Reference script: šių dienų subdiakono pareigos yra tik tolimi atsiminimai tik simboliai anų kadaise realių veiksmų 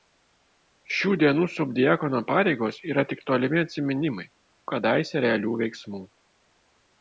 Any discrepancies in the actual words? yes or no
yes